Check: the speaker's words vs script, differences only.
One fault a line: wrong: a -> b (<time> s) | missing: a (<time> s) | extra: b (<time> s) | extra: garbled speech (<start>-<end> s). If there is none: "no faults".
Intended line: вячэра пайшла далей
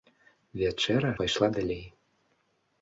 no faults